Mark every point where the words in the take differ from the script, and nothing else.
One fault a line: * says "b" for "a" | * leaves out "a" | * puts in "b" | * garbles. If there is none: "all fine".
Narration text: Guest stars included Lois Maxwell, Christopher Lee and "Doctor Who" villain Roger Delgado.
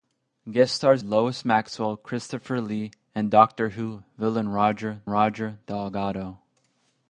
* leaves out "included"
* puts in "Roger"